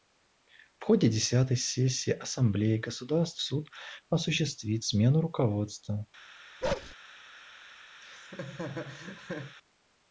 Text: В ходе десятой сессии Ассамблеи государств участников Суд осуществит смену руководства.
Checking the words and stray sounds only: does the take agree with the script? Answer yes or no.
no